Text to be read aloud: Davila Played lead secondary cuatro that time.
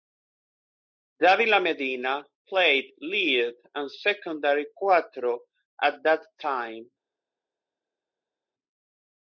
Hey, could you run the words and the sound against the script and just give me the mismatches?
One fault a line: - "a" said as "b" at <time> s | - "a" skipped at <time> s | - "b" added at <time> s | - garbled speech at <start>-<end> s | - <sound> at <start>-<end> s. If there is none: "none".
- "Medina" added at 1.6 s
- "and" added at 3.8 s
- "at" added at 5.8 s